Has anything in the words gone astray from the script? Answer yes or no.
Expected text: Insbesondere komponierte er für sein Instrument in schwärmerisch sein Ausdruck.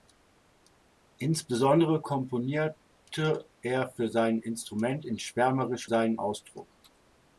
no